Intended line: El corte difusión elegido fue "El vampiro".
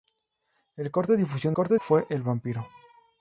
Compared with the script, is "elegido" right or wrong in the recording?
wrong